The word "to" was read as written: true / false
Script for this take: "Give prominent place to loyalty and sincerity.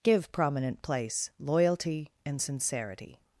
false